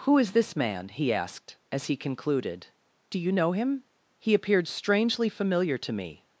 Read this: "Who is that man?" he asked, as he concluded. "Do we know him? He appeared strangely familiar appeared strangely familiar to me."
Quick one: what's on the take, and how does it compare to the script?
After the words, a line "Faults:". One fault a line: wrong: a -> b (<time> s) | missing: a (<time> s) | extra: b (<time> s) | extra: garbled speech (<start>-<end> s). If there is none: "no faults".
"Who is this man?" he asked, as he concluded. "Do you know him? He appeared strangely familiar to me."
Faults:
wrong: that -> this (0.3 s)
wrong: we -> you (3.2 s)
missing: appeared strangely familiar (5.8 s)